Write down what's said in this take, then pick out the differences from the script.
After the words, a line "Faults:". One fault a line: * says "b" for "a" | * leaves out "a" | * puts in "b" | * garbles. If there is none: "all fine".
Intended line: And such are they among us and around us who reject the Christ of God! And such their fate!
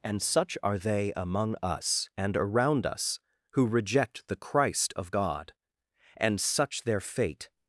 And such are they among us and around us who reject the Christ of God! And such their fate!
Faults:
all fine